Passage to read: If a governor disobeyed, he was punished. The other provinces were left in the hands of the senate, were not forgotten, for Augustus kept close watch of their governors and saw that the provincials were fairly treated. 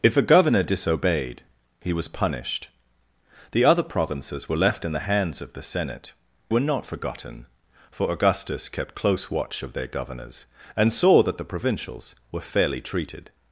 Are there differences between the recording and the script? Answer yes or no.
no